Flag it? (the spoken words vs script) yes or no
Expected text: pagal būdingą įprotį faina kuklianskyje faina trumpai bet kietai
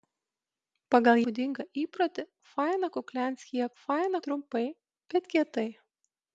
no